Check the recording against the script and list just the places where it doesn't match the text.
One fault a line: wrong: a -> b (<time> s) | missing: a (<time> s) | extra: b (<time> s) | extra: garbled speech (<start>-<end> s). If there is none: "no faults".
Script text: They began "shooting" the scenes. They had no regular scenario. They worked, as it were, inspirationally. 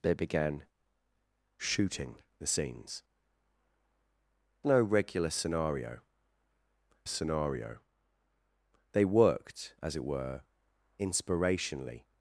missing: They had (3.0 s)
extra: scenario (7.1 s)